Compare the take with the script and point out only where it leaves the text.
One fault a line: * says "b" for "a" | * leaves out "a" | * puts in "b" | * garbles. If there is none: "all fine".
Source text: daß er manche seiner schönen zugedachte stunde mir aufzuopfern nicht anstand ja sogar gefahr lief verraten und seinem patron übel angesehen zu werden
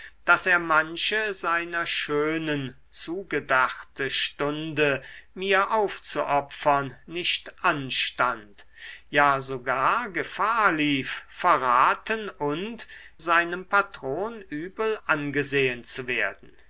all fine